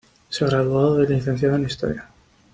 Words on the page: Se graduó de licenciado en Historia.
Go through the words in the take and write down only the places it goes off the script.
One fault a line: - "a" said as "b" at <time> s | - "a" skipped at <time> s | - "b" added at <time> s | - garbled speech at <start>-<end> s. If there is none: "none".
none